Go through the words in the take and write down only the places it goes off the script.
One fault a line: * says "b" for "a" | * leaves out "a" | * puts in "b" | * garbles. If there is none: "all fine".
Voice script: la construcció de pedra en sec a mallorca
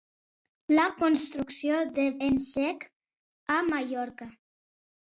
* leaves out "pedra"